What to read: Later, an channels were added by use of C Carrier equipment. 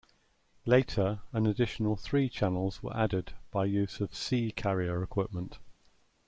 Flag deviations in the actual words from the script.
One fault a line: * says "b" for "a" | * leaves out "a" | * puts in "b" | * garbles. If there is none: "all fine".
* puts in "additional three"